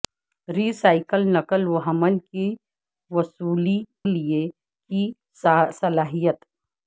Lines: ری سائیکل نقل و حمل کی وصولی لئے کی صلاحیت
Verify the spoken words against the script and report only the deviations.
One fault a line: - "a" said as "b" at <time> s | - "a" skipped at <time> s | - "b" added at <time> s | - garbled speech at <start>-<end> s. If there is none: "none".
none